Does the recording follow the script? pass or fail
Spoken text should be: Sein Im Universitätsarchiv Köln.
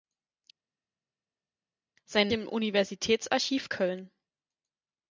pass